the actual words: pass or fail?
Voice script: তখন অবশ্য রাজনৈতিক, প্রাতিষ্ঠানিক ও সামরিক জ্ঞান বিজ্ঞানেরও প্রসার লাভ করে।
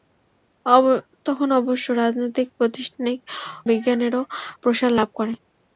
fail